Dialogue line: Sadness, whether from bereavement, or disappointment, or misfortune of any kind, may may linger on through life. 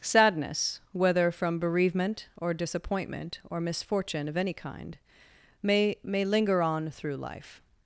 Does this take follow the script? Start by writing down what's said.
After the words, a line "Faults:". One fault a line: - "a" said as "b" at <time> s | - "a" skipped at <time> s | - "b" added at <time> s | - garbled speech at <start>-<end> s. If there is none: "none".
Sadness, whether from bereavement, or disappointment, or misfortune of any kind, may may linger on through life.
Faults:
none